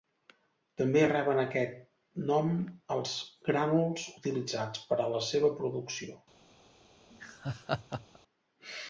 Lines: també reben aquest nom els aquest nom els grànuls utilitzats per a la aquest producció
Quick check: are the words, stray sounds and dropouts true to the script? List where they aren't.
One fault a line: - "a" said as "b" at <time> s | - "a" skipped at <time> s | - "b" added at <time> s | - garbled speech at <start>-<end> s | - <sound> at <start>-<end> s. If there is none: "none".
- "aquest nom els" skipped at 3.1 s
- "aquest" said as "seva" at 5.3 s
- laugh at 7.1-8.2 s